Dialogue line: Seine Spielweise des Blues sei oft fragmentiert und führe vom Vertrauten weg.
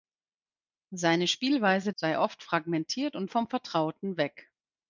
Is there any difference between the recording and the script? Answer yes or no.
yes